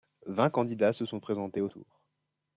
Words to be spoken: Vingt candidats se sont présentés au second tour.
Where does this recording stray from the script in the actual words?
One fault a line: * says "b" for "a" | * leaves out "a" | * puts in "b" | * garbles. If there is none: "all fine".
* leaves out "second"